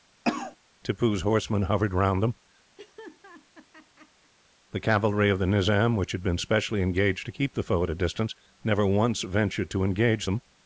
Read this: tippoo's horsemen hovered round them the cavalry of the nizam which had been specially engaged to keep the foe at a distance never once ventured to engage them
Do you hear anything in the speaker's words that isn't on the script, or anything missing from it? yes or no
no